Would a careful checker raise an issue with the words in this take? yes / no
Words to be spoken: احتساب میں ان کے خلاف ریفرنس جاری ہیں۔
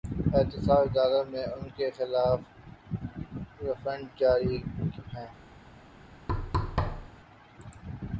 yes